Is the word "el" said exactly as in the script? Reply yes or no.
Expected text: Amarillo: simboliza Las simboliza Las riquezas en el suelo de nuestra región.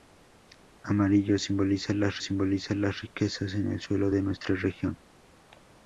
yes